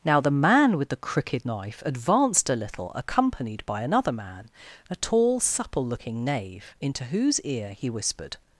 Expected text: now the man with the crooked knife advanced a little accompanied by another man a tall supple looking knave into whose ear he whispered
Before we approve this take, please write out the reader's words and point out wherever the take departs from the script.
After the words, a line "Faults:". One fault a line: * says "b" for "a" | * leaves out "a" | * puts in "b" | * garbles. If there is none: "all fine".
now the man with the crooked knife advanced a little accompanied by another man a tall supple looking knave into whose ear he whispered
Faults:
all fine